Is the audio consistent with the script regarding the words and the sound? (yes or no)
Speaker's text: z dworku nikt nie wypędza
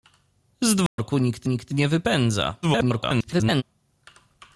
no